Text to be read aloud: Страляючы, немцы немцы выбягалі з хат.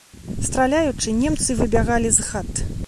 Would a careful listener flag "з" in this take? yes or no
no